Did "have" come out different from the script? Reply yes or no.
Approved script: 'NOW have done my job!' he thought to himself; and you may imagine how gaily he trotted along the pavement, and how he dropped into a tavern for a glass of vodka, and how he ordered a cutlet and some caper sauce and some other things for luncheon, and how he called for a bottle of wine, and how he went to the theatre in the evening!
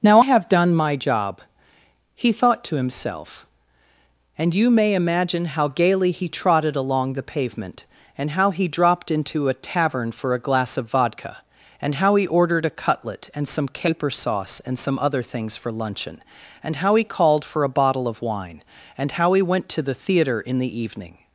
no